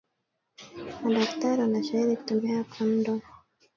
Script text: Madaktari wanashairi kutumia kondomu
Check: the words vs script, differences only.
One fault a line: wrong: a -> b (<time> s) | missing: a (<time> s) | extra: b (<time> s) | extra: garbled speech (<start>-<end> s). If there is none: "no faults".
no faults